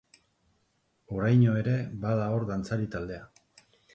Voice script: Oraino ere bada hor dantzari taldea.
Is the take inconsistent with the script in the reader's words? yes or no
no